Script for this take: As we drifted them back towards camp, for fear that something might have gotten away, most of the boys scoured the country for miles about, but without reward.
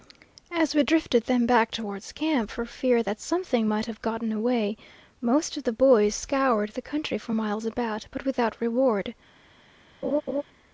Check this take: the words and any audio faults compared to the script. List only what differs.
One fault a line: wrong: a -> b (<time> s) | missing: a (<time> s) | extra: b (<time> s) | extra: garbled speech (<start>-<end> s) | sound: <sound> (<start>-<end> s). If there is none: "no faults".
sound: laugh (10.0-10.4 s)